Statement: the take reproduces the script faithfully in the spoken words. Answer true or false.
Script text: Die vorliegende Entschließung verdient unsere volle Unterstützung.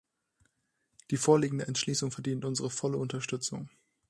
true